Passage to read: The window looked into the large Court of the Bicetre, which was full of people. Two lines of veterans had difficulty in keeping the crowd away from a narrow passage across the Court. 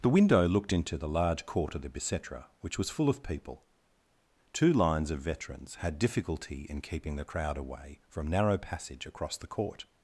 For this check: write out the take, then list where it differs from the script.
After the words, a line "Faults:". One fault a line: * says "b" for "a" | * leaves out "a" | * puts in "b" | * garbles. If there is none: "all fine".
The window looked into the large Court of the Bicetre, which was full of people. Two lines of veterans had difficulty in keeping the crowd away from narrow passage across the Court.
Faults:
* leaves out "a"